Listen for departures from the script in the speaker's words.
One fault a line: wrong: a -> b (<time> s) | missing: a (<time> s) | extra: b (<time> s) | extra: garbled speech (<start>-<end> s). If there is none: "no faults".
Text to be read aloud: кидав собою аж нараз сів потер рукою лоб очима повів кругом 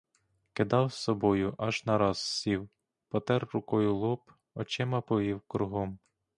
no faults